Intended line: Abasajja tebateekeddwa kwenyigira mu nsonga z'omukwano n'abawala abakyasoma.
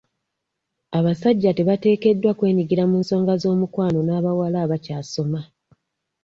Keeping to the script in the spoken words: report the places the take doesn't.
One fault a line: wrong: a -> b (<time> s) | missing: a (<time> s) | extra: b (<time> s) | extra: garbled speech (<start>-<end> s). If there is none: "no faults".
no faults